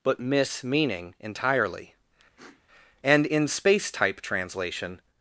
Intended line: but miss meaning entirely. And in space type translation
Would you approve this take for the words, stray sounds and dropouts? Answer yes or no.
no